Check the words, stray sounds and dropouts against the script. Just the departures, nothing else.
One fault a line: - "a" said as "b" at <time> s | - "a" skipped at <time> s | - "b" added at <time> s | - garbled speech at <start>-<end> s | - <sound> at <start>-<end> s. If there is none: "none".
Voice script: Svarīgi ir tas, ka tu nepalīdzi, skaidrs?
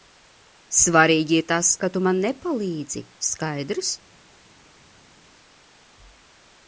- "man" added at 2.0 s